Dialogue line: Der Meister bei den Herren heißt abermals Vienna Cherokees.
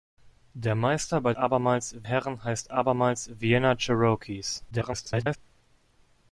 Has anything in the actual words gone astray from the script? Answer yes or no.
yes